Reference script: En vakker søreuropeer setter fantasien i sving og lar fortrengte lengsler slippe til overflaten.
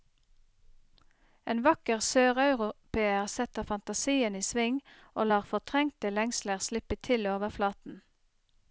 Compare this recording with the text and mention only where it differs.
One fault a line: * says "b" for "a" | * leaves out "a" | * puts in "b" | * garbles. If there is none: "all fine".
all fine